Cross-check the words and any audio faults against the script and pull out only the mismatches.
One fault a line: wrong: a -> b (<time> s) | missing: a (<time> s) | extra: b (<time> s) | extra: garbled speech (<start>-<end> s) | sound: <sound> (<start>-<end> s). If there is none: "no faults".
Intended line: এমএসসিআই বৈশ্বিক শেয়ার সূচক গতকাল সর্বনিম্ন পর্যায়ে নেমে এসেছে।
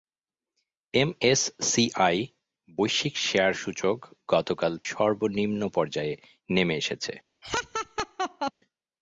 sound: laugh (7.4-8.5 s)